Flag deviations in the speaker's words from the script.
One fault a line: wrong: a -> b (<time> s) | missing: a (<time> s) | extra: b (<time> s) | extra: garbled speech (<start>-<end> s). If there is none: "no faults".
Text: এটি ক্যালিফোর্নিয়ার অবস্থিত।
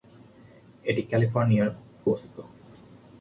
no faults